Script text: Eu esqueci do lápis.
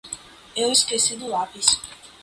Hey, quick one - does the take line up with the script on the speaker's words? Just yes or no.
yes